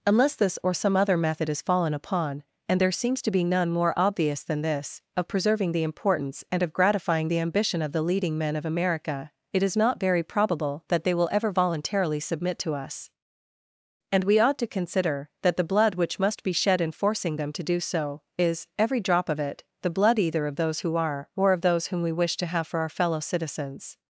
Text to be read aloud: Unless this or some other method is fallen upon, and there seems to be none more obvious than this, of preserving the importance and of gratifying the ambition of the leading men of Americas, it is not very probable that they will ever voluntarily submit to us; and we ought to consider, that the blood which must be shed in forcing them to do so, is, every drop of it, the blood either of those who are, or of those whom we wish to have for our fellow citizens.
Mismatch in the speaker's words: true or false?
true